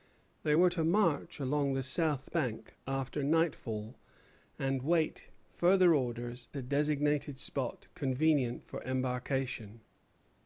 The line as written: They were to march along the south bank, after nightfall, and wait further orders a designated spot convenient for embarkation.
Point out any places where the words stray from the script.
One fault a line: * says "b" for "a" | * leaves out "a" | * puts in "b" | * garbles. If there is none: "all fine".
all fine